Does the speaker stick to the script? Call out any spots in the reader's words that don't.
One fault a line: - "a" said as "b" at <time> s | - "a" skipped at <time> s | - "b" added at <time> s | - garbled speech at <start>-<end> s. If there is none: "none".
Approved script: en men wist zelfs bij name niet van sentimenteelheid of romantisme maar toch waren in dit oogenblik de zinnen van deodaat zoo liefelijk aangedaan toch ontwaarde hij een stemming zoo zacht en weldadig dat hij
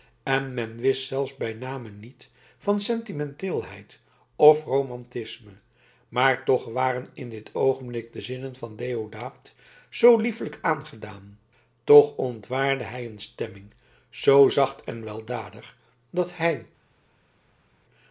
none